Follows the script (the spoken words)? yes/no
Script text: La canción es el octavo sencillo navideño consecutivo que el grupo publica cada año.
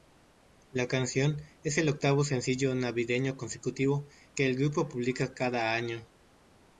yes